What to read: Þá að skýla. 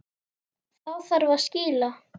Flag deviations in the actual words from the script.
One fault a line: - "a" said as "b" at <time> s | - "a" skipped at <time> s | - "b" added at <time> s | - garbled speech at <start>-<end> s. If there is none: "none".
- "þarf" added at 1.1 s